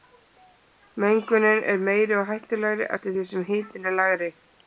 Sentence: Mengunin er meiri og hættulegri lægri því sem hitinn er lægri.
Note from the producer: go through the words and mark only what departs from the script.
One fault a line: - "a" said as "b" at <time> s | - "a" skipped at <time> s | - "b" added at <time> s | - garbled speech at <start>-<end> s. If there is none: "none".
- "lægri" said as "eftir" at 3.0 s